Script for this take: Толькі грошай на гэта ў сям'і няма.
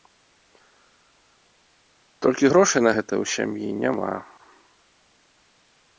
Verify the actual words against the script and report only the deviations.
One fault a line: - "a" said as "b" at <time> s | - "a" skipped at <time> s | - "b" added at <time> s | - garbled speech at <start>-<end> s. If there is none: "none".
none